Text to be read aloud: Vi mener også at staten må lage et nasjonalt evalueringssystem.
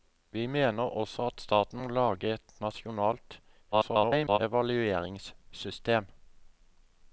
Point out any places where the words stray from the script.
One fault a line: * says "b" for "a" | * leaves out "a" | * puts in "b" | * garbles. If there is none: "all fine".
* garbles